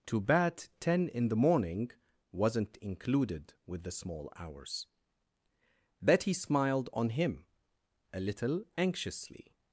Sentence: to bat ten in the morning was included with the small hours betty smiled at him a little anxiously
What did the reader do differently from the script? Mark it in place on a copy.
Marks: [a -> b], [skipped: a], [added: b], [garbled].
to bat ten in the morning [was -> wasn't] included with the small hours betty smiled [at -> on] him a little anxiously